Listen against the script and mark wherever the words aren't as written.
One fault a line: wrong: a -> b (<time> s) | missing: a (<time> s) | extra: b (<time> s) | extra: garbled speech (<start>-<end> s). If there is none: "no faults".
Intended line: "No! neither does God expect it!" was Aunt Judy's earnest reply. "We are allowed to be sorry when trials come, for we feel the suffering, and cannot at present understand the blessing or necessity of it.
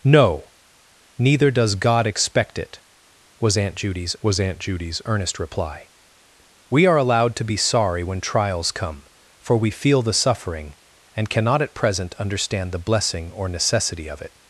extra: was Aunt Judy's (4.2 s)